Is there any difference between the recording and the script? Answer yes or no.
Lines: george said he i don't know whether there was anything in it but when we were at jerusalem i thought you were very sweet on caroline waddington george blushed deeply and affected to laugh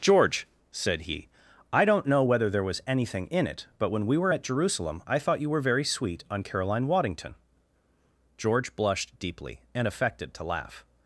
no